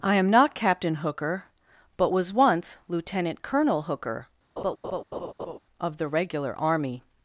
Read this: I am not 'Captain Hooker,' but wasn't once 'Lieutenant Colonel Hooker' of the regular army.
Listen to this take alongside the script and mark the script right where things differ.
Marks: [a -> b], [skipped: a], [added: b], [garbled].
I am not 'Captain Hooker,' but [wasn't -> was] once 'Lieutenant Colonel Hooker' of the regular army.